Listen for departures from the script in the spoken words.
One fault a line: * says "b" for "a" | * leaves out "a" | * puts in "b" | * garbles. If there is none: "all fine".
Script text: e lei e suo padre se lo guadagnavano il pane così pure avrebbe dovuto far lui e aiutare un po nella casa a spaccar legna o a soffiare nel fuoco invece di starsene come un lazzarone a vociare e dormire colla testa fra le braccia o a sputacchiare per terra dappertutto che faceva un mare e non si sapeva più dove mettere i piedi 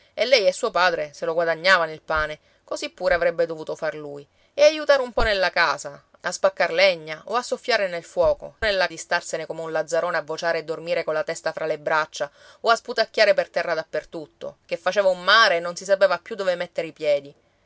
* says "nella" for "invece"